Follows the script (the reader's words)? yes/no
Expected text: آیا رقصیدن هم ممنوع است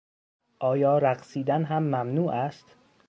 yes